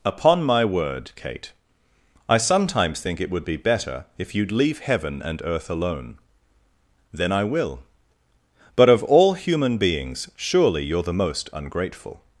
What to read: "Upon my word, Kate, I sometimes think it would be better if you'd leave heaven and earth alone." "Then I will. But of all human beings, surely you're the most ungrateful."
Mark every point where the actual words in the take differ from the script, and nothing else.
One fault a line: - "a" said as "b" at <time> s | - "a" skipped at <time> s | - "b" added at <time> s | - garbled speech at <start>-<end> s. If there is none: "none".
none